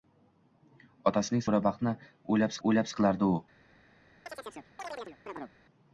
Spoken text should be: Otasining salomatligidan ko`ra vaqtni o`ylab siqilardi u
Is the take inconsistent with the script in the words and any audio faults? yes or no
yes